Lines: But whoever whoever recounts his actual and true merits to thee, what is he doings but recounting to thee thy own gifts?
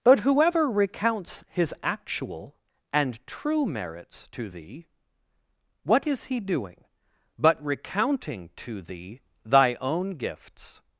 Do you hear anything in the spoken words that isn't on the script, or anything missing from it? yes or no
yes